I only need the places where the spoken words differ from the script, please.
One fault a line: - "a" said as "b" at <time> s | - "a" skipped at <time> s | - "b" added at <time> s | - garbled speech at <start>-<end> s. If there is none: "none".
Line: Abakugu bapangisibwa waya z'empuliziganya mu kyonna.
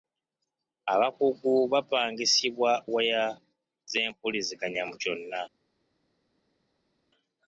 none